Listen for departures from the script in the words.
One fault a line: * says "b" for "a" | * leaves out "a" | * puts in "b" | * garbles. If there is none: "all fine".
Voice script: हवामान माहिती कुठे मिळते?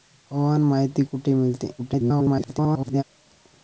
* garbles